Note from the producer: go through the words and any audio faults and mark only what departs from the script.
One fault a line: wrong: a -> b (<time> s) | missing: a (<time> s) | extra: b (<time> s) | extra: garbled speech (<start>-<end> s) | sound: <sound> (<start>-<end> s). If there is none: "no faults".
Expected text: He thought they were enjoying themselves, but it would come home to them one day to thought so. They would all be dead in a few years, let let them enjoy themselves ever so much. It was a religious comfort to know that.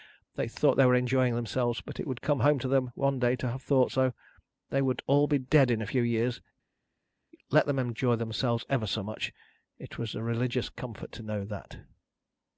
wrong: He -> They (0.3 s)
extra: have (3.5 s)
missing: let (7.7 s)